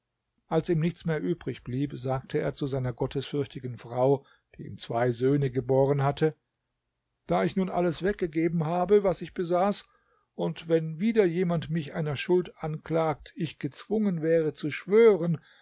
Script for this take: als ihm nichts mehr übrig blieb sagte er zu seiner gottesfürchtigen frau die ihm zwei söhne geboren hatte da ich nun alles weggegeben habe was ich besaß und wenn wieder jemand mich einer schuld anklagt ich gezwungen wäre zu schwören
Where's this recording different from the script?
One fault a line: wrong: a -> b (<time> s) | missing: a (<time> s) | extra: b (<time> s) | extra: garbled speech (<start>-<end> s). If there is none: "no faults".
no faults